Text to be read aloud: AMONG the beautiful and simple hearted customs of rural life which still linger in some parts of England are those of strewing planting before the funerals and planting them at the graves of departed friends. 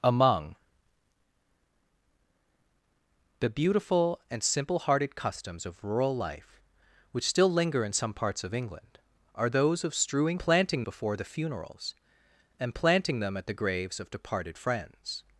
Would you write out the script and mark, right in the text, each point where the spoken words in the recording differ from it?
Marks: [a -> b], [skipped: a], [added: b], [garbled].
AMONG the beautiful and simple hearted customs of rural life which still linger in some parts of England are those of strewing planting before the funerals and planting them at the graves of departed friends.